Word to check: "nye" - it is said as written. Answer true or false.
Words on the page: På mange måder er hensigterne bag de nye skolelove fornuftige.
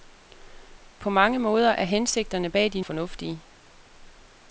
false